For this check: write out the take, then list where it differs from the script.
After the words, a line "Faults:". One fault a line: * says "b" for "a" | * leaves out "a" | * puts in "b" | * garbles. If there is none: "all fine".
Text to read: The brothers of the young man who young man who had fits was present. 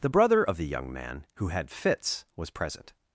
The brother of the young man who had fits was present.
Faults:
* says "brother" for "brothers"
* leaves out "young man who"